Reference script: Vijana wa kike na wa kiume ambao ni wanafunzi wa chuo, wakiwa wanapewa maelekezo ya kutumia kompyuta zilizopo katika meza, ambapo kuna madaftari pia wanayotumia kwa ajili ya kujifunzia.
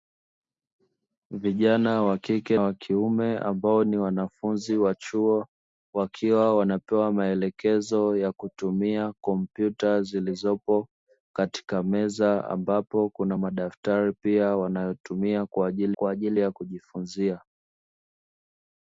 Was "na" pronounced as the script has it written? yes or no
no